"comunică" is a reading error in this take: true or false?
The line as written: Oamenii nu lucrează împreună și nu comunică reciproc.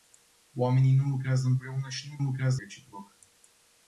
true